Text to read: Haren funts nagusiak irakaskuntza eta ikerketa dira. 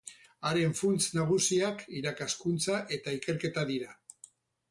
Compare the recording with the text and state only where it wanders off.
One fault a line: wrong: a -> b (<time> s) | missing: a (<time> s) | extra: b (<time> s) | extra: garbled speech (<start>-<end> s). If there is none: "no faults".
no faults